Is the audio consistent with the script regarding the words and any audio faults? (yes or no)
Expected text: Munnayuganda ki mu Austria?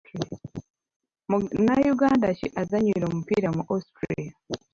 no